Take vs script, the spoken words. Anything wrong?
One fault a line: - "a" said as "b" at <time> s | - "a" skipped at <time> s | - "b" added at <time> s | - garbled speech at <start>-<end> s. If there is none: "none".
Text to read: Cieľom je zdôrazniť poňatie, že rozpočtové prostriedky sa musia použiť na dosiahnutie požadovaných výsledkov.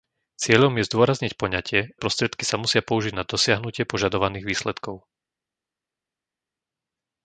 - "že rozpočtové" skipped at 1.9 s